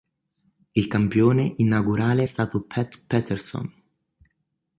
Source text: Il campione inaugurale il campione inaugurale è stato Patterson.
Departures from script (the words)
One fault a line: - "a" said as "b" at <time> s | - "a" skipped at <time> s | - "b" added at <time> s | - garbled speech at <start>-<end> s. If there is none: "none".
- "il campione inaugurale" skipped at 2.2 s
- "Pat" added at 2.6 s